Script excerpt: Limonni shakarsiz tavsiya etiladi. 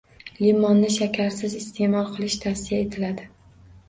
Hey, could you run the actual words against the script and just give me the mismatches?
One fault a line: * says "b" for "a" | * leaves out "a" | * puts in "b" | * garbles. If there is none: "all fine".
* puts in "iste'mol qilish"